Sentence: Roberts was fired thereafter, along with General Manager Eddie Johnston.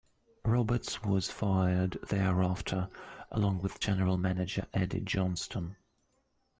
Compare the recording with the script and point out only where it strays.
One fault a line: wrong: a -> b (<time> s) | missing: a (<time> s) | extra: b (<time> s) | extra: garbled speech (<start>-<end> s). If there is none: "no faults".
no faults